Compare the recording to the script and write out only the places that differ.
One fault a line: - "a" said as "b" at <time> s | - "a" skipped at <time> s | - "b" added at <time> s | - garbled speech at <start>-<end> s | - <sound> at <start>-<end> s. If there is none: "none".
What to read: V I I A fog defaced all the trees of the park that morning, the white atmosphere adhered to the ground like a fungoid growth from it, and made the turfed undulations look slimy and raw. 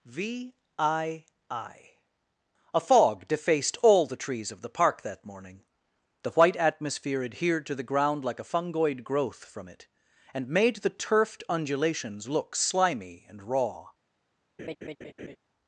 - laugh at 14.6-15.4 s